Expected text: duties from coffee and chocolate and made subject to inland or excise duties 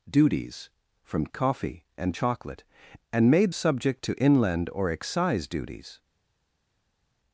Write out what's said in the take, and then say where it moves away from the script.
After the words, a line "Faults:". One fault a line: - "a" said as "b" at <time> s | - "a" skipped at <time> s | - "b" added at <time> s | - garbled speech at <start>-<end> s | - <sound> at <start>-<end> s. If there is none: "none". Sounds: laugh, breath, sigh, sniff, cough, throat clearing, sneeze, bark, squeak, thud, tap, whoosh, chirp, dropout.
duties from coffee and chocolate and made subject to inland or excise duties
Faults:
none